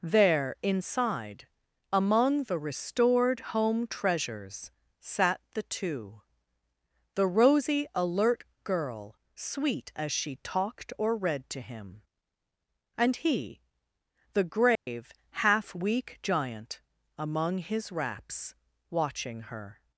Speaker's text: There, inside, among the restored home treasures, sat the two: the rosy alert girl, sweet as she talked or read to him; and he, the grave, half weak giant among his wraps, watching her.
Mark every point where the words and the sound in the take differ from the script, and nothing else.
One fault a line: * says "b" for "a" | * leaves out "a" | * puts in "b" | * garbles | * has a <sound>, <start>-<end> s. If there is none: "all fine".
* has a dropout, 14.8-14.9 s